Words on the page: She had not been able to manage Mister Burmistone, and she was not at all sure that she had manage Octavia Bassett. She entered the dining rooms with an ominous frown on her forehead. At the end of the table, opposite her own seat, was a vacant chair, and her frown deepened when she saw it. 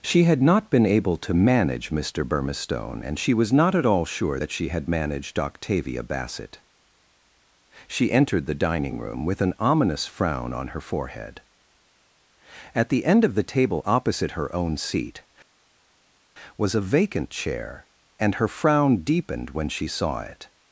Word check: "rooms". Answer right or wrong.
wrong